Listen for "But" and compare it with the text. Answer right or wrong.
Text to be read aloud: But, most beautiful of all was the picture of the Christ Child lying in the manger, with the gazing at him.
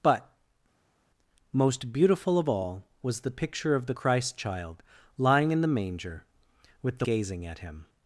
right